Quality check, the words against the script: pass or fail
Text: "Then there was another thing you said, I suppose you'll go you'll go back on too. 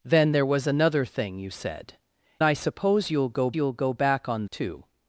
pass